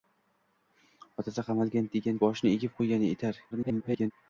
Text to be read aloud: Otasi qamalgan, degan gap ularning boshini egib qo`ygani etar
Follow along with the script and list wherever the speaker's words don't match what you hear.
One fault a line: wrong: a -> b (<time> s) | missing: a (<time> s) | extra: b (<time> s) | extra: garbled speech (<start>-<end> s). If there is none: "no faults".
missing: gap ularning (2.2 s)
extra: garbled speech (3.5-4.1 s)